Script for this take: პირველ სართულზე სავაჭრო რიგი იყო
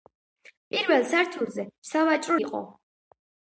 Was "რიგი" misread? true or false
true